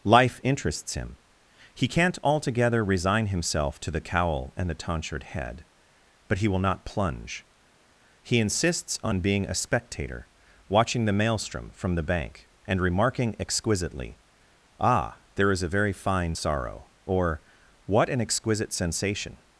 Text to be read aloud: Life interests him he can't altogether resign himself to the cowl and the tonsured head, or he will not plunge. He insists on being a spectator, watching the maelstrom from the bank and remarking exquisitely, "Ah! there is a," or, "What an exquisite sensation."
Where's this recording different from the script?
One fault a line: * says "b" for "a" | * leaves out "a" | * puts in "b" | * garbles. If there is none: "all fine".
* says "but" for "or"
* puts in "very fine sorrow"